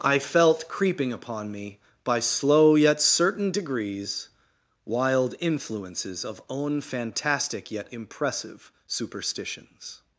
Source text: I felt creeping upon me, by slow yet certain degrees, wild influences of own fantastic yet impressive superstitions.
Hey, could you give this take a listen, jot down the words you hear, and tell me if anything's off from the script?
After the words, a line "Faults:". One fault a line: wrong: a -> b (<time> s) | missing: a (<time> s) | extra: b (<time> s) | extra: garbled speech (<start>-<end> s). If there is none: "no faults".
I felt creeping upon me, by slow yet certain degrees, wild influences of own fantastic yet impressive superstitions.
Faults:
no faults